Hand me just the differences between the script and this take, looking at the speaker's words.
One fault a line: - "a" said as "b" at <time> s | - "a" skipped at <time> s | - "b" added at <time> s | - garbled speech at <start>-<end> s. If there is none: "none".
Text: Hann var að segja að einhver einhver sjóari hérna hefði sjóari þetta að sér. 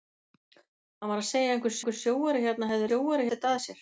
none